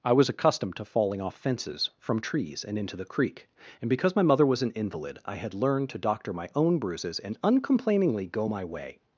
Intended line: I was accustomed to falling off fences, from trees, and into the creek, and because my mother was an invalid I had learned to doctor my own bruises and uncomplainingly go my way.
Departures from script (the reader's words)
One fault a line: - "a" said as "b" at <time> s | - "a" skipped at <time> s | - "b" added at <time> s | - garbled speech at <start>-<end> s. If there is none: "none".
none